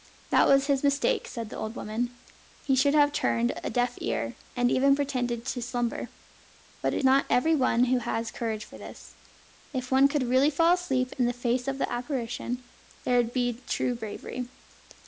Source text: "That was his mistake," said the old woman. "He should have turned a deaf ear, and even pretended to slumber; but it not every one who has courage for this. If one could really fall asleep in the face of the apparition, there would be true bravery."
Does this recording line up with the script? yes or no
yes